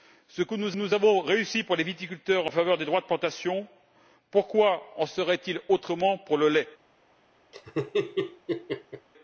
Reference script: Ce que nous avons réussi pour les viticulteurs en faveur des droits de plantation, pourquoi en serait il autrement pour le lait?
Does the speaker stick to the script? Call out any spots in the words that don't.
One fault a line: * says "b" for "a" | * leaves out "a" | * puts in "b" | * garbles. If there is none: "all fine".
* puts in "nous"